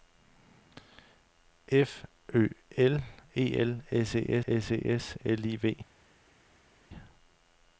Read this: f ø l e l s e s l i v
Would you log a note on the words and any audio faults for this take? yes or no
yes